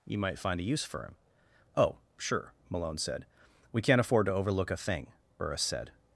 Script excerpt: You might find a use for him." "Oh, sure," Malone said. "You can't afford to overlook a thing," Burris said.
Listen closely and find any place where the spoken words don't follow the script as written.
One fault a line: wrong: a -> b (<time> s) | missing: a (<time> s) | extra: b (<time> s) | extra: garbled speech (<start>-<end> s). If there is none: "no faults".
wrong: You -> We (3.7 s)